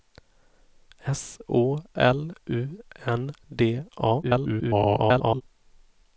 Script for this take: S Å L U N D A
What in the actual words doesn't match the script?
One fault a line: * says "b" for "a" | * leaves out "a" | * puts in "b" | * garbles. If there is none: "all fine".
* garbles